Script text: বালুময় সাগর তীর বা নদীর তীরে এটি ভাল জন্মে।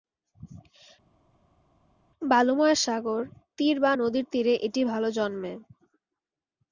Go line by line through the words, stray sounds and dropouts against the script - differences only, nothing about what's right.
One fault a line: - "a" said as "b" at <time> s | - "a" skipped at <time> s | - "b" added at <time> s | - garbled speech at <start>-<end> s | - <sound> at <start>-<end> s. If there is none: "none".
none